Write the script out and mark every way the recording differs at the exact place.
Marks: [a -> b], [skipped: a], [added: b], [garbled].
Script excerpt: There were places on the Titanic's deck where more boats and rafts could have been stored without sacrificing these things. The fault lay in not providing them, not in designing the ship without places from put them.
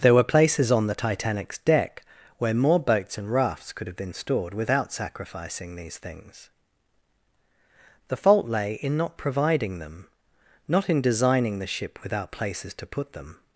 There were places on the Titanic's deck where more boats and rafts could have been stored without sacrificing these things. The fault lay in not providing them, not in designing the ship without places [from -> to] put them.